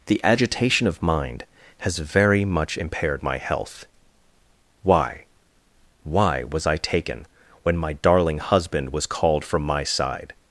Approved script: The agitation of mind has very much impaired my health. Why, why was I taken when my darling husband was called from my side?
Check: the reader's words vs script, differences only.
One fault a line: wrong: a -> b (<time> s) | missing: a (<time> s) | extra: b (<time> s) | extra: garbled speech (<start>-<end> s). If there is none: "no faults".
no faults